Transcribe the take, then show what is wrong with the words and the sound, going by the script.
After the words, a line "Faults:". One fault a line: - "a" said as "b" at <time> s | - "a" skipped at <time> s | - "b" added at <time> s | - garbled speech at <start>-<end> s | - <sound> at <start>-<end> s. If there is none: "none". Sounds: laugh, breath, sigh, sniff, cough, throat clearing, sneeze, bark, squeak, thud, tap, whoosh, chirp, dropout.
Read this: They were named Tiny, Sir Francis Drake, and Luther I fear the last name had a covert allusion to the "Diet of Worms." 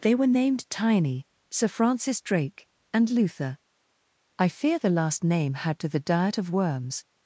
They were named Tiny, Sir Francis Drake, and Luther I fear the last name had to the "Diet of Worms."
Faults:
- "a covert allusion" skipped at 5.8 s